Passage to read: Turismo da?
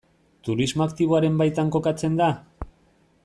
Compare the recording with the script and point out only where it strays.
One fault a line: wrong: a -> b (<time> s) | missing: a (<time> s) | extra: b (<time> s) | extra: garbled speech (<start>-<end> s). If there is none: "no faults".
extra: aktiboaren baitan kokatzen (0.8 s)